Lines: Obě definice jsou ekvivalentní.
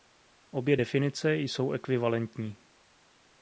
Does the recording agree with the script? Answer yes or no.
yes